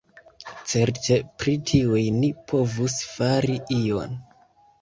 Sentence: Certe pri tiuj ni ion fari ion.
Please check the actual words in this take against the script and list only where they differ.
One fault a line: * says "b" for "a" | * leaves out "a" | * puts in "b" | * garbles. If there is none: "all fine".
* says "povus" for "ion"